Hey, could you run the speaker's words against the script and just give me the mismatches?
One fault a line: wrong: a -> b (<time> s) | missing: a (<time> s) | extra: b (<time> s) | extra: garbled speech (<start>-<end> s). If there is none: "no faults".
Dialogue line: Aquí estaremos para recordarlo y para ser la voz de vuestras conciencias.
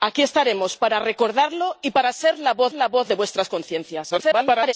extra: la voz (2.7 s)
extra: garbled speech (4.1-4.7 s)